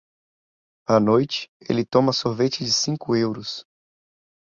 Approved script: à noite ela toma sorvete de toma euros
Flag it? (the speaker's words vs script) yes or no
yes